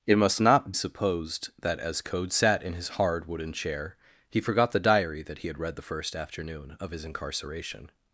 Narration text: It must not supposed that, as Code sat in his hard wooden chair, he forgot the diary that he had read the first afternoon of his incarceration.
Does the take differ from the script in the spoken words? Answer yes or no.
no